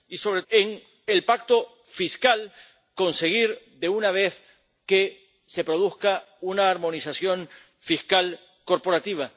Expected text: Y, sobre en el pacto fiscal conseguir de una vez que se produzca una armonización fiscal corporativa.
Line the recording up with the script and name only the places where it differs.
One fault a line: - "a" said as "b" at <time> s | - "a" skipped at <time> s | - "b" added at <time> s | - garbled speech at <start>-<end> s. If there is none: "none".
none